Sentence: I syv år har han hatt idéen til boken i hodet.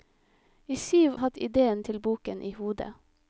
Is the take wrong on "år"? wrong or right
wrong